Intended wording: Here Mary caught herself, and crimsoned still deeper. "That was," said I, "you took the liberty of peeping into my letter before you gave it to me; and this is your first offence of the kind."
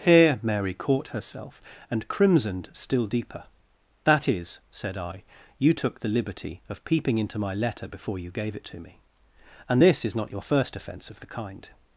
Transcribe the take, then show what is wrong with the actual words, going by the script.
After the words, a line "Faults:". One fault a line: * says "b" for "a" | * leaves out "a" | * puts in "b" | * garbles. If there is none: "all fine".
Here Mary caught herself, and crimsoned still deeper. "That is," said I, "you took the liberty of peeping into my letter before you gave it to me; and this is not your first offence of the kind."
Faults:
* says "is" for "was"
* puts in "not"